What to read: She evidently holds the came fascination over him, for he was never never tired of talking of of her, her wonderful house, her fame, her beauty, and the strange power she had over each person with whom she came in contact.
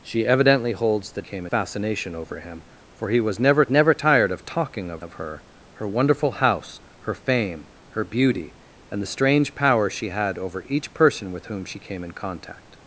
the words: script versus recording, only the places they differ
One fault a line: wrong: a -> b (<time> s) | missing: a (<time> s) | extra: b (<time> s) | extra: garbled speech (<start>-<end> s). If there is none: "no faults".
no faults